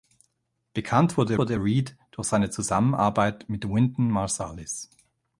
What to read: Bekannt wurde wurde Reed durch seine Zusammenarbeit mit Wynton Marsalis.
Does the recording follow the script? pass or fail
pass